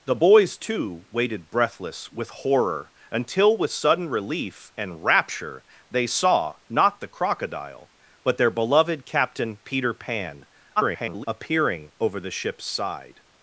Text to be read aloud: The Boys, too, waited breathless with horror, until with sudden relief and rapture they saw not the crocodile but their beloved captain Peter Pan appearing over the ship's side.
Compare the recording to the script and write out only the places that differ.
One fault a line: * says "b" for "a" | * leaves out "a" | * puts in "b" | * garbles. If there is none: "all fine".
* garbles